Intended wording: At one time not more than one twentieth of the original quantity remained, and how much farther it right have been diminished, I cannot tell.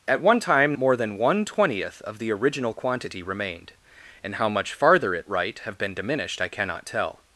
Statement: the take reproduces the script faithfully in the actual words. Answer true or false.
false